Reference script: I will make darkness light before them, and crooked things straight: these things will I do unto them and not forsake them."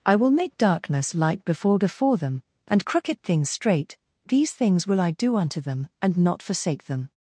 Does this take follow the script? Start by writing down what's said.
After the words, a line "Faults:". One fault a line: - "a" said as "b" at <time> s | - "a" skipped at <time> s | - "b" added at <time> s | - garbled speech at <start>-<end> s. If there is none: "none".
I will make darkness light before before them, and crooked things straight: these things will I do unto them and not forsake them."
Faults:
- "before" added at 1.8 s